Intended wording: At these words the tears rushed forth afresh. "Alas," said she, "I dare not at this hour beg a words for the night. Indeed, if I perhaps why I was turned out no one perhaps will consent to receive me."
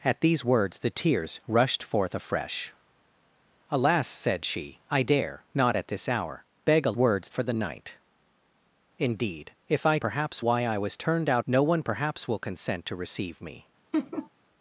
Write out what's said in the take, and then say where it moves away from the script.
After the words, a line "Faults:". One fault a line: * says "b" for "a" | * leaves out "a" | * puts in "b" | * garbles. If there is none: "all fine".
At these words the tears rushed forth afresh. "Alas," said she, "I dare not at this hour beg a words for the night. Indeed, if I perhaps why I was turned out no one perhaps will consent to receive me."
Faults:
all fine